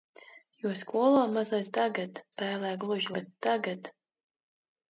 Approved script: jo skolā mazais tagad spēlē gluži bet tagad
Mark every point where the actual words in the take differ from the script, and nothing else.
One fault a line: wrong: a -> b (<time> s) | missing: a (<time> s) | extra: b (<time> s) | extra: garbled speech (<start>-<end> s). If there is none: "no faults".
no faults